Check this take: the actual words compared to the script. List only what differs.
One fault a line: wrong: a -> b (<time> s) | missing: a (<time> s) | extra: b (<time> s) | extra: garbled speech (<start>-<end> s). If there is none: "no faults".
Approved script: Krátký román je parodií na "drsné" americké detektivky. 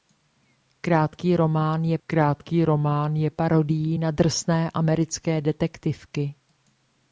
extra: krátký román je (2.1 s)